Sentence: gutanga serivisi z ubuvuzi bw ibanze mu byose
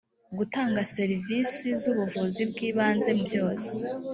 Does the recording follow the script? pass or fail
pass